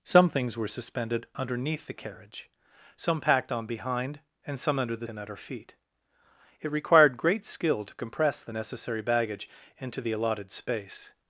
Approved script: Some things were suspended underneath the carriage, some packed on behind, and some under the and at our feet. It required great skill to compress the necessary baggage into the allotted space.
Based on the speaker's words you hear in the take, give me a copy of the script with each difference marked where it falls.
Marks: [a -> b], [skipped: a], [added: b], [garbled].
Some things were suspended underneath the carriage, some packed on behind, and some under the and at our feet. It required great skill to compress the necessary baggage into the allotted space.